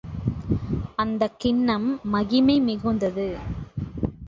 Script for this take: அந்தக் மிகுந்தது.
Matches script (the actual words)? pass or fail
fail